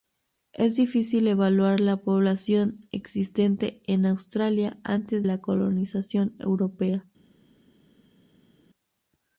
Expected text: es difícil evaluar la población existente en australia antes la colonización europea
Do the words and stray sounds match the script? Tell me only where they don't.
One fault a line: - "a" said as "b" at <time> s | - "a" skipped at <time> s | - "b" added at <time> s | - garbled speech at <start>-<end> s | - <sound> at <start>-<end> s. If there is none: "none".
none